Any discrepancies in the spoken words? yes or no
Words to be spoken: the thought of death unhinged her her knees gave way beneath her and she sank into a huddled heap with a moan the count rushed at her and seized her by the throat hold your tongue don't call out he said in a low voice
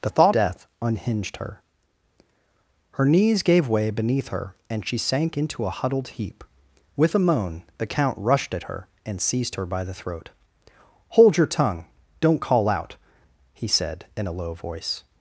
yes